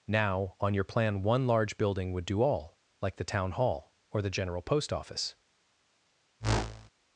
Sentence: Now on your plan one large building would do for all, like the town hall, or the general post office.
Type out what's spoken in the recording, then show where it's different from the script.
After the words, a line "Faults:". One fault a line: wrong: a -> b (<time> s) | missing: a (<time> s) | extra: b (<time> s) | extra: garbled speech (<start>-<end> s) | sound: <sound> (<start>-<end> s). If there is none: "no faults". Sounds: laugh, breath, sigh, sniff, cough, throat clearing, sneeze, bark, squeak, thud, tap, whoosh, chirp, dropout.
Now on your plan one large building would do all, like the town hall, or the general post office.
Faults:
missing: for (2.4 s)
sound: whoosh (6.4-6.9 s)